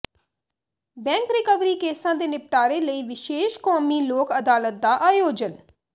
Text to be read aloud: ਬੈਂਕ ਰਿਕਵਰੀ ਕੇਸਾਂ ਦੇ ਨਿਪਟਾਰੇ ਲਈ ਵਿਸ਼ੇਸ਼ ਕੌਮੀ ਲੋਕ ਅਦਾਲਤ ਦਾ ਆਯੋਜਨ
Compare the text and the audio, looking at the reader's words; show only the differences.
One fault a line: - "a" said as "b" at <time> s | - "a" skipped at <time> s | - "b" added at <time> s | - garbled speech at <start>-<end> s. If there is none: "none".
none